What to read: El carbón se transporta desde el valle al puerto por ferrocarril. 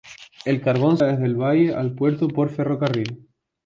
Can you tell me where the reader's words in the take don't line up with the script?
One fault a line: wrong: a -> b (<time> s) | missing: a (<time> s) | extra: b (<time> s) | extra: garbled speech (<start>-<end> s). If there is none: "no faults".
missing: se transporta (1.0 s)